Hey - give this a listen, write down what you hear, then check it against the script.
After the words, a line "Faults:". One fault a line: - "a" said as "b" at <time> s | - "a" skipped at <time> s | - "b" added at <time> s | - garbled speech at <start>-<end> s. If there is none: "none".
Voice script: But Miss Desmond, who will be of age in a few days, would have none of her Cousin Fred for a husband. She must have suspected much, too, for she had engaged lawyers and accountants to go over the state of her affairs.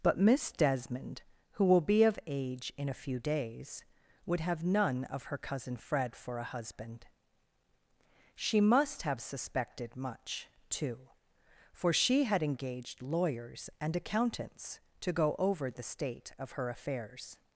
But Miss Desmond, who will be of age in a few days, would have none of her Cousin Fred for a husband. She must have suspected much, too, for she had engaged lawyers and accountants to go over the state of her affairs.
Faults:
none